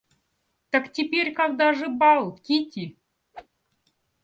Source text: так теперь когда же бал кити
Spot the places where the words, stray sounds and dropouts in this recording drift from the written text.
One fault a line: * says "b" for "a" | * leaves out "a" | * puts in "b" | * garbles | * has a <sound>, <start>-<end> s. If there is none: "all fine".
* has a whoosh, 3.3-3.5 s